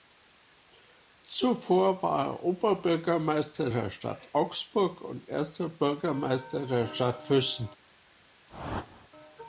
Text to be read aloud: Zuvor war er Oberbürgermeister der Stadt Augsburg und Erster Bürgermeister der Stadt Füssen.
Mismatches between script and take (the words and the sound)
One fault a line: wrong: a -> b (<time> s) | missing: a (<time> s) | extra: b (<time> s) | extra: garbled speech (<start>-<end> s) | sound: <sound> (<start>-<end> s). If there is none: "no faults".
sound: whoosh (8.5-9.1 s)